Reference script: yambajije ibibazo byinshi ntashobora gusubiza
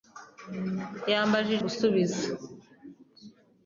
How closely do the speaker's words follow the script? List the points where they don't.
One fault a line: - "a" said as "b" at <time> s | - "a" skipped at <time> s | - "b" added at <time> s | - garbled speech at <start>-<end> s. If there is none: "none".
- "ibibazo byinshi ntashobora" skipped at 1.6 s